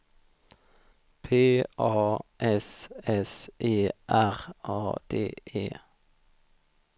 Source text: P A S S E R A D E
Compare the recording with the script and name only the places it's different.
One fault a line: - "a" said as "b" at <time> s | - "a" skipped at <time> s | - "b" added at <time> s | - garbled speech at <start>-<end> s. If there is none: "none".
none